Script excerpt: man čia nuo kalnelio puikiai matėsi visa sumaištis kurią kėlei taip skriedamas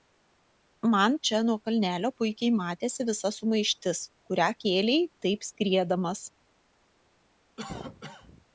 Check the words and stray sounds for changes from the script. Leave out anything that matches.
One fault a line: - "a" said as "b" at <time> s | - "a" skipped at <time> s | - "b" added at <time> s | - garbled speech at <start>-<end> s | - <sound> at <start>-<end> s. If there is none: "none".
- cough at 7.6-8.5 s